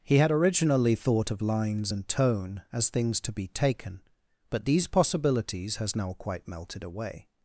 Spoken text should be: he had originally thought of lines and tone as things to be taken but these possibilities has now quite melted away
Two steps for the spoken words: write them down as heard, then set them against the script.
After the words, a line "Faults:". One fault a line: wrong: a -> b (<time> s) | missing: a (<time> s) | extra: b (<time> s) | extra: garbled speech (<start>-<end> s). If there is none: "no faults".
he had originally thought of lines and tone as things to be taken but these possibilities has now quite melted away
Faults:
no faults